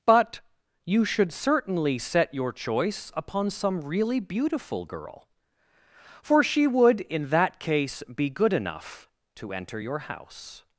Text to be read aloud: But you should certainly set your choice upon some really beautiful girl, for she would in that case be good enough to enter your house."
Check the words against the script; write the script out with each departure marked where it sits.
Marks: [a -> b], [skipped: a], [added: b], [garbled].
But you should certainly set your choice upon some really beautiful girl, for she would in that case be good enough to enter your house."